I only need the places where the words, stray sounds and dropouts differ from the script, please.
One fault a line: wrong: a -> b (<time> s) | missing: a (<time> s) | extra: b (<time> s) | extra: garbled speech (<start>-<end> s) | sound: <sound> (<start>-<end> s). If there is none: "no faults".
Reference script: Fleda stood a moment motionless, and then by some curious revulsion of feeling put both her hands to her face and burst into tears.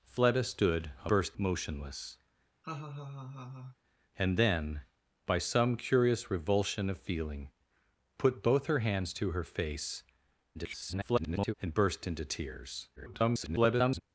wrong: moment -> burst (1.1 s)
sound: laugh (2.6-3.8 s)
extra: garbled speech (10.5-11.5 s)
extra: garbled speech (13.0-14.0 s)